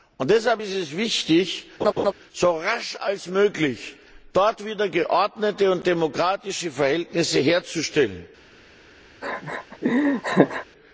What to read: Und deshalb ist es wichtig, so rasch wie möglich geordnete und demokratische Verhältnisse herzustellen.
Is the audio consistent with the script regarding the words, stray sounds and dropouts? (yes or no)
no